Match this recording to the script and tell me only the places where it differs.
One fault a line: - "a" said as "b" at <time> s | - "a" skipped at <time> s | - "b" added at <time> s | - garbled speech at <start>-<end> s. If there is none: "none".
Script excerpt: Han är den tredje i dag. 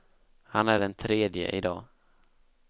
none